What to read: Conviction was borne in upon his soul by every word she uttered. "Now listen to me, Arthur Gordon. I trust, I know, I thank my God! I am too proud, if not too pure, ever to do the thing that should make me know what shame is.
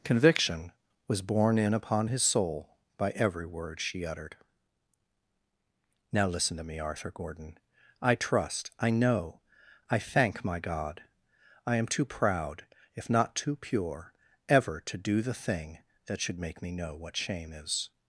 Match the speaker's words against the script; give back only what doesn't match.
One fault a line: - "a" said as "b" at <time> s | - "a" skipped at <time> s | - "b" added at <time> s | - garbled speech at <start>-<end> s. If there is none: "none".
none